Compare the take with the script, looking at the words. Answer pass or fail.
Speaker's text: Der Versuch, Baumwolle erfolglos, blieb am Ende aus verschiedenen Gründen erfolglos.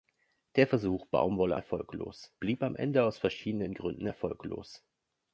pass